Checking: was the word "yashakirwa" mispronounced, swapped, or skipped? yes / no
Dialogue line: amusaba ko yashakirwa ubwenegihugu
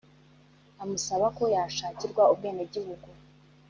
no